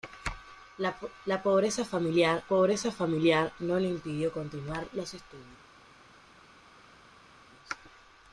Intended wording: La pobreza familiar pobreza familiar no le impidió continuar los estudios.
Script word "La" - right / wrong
right